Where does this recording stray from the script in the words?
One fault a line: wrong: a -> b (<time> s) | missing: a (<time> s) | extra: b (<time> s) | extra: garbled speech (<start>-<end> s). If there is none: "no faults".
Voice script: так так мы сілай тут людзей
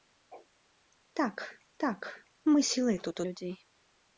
no faults